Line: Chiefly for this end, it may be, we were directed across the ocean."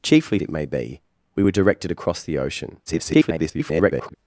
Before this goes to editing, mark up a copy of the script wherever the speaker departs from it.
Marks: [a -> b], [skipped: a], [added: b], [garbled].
Chiefly [skipped: for this end,] it may be, we were directed across the ocean." [garbled]